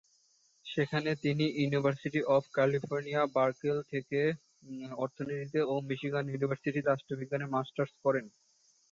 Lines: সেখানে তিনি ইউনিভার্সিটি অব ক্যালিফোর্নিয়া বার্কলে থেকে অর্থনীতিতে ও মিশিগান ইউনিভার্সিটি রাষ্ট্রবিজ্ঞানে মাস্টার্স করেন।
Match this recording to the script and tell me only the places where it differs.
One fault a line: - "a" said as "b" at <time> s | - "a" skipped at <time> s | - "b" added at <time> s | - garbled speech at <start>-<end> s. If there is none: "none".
none